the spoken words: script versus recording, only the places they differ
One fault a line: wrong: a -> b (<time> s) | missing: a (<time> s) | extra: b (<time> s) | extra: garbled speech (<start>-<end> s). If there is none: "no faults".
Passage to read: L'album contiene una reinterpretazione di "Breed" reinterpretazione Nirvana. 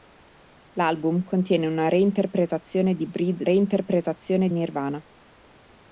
no faults